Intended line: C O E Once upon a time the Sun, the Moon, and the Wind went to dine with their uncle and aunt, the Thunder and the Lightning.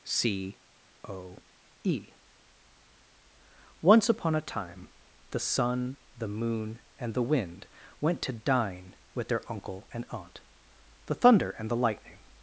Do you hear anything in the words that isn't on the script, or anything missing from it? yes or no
no